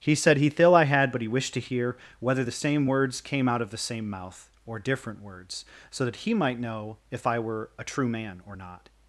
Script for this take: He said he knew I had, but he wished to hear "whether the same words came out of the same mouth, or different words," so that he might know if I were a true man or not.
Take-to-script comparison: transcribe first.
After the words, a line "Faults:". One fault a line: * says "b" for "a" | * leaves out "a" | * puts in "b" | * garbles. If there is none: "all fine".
He said he thill I had, but he wished to hear "whether the same words came out of the same mouth, or different words," so that he might know if I were a true man or not.
Faults:
* says "thill" for "knew"